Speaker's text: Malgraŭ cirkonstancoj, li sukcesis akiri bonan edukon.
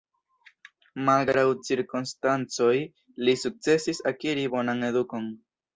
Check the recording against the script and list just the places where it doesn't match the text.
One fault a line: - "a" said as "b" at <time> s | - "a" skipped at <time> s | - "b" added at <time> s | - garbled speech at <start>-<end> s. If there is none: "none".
none